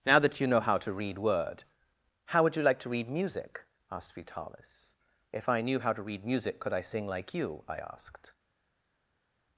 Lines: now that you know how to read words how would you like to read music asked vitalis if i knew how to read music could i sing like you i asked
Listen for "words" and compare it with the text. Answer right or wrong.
wrong